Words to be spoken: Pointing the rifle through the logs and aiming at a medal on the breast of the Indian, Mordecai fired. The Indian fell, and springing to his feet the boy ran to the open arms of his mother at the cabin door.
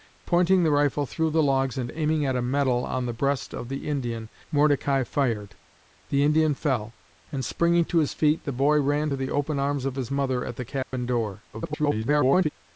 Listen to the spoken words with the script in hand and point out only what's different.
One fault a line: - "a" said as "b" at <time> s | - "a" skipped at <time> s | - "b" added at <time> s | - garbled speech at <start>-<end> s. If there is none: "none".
- garbled speech at 11.5-12.5 s